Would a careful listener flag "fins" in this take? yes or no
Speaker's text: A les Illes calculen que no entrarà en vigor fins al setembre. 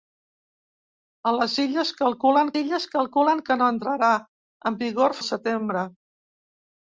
yes